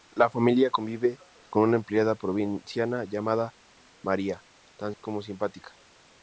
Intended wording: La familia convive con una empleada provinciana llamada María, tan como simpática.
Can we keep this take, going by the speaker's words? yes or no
yes